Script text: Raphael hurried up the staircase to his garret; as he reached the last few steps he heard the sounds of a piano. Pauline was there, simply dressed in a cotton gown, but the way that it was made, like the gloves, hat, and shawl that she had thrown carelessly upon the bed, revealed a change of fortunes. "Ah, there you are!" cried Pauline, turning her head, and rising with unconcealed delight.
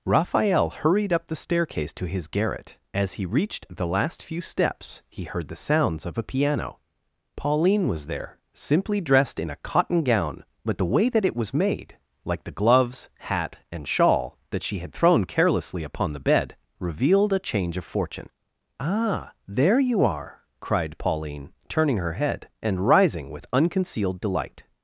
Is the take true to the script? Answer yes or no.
no